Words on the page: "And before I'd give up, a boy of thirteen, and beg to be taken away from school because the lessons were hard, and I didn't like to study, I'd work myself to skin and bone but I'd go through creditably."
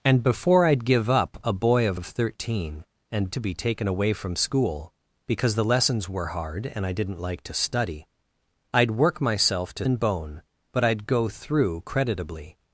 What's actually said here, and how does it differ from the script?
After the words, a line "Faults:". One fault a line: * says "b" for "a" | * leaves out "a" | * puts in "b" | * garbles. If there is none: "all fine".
"And before I'd give up, a boy of of thirteen, and to be taken away from school because the lessons were hard, and I didn't like to study, I'd work myself to and bone but I'd go through creditably."
Faults:
* puts in "of"
* leaves out "beg"
* leaves out "skin"